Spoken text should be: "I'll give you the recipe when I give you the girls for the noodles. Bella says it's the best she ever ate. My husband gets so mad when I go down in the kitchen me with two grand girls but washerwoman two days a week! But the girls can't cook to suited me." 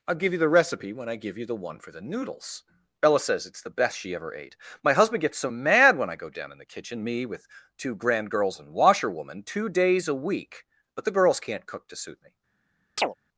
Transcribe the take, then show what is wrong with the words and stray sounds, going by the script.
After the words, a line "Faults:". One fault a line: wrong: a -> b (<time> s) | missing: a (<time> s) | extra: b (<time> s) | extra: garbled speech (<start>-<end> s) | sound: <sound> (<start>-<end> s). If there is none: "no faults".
"I'll give you the recipe when I give you the one for the noodles. Bella says it's the best she ever ate. My husband gets so mad when I go down in the kitchen me with two grand girls and washerwoman two days a week! But the girls can't cook to suit me."
Faults:
wrong: girls -> one (1.6 s)
wrong: but -> and (8.6 s)
wrong: suited -> suit (12.0 s)
sound: chirp (13.0-13.1 s)